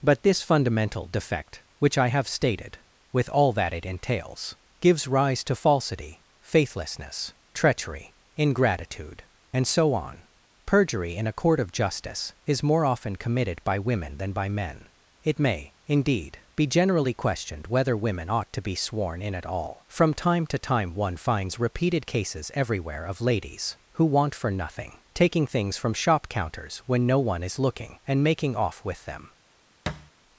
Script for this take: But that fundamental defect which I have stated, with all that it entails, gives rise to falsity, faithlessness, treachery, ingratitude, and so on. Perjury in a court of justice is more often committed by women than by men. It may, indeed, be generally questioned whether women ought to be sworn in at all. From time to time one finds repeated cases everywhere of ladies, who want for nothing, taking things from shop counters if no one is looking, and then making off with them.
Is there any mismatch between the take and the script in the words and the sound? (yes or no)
yes